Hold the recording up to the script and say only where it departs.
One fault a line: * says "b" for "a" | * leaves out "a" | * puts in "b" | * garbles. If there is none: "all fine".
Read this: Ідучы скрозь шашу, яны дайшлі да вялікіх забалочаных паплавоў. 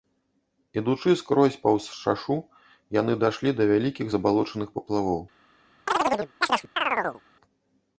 * puts in "паўз"